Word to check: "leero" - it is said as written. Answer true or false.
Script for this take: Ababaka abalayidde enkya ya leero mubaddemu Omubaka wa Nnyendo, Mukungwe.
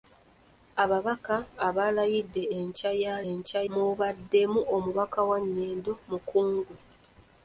false